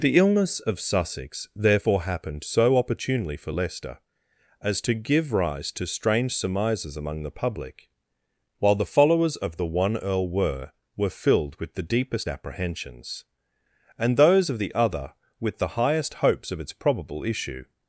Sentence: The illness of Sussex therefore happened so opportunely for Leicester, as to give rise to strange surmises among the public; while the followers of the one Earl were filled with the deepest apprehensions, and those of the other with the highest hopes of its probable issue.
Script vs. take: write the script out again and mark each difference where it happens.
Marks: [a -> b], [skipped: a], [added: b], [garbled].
The illness of Sussex therefore happened so opportunely for Leicester, as to give rise to strange surmises among the public; while the followers of the one Earl were [added: were] filled with the deepest apprehensions, and those of the other with the highest hopes of its probable issue.